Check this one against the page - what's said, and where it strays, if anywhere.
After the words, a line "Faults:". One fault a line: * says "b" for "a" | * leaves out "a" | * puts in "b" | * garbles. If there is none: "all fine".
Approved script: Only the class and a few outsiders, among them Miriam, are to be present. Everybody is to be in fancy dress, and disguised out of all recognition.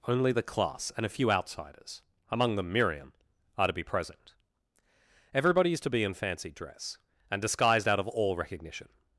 Only the class and a few outsiders, among them Miriam, are to be present. Everybody is to be in fancy dress, and disguised out of all recognition.
Faults:
all fine